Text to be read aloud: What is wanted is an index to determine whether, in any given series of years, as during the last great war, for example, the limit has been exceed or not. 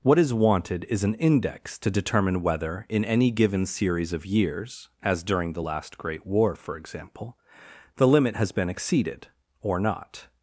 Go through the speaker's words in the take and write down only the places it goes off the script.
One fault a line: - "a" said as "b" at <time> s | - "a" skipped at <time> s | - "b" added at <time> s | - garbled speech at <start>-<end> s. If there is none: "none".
- "exceed" said as "exceeded" at 8.7 s